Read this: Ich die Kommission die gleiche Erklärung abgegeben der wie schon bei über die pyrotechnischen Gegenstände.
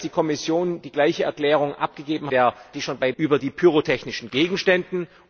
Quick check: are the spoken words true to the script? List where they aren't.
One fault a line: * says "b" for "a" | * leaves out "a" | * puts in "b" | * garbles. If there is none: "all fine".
all fine